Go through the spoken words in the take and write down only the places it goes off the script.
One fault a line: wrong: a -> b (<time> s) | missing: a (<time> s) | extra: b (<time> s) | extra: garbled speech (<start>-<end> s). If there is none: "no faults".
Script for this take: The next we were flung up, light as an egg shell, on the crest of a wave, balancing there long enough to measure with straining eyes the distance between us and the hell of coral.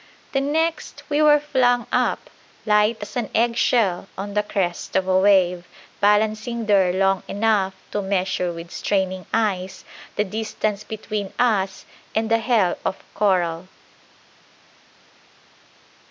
no faults